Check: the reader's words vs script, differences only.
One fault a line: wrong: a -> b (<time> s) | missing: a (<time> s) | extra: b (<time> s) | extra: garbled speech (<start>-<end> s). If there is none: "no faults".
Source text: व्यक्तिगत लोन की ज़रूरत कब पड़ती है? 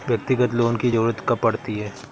no faults